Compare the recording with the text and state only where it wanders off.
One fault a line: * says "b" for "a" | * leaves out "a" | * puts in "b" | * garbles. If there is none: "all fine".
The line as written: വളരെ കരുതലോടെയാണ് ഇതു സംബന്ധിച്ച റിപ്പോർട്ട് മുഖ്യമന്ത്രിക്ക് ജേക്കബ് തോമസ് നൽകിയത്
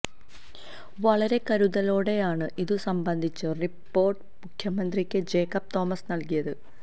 all fine